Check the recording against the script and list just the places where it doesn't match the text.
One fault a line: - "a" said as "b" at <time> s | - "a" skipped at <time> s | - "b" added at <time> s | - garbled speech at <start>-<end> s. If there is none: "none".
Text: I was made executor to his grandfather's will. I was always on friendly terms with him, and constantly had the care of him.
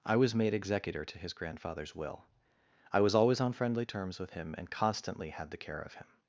none